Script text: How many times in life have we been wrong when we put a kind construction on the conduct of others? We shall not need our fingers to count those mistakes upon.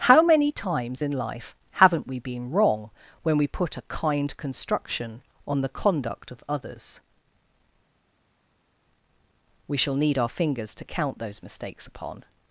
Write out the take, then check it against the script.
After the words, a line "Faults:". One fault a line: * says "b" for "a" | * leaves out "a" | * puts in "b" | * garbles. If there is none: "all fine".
How many times in life haven't we been wrong when we put a kind construction on the conduct of others? We shall need our fingers to count those mistakes upon.
Faults:
* says "haven't" for "have"
* leaves out "not"